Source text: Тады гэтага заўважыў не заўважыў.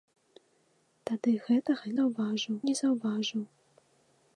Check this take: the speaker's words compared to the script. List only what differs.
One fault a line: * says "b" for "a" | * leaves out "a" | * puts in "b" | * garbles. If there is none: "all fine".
all fine